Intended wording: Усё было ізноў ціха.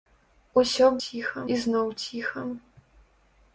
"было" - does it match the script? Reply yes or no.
no